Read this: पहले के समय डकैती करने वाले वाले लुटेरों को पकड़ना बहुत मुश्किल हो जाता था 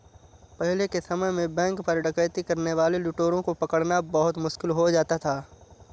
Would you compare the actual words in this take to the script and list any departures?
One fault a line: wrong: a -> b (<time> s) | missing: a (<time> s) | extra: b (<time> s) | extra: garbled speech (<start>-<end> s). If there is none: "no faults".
extra: में बैंक पर (1.3 s)
missing: वाले (3.0 s)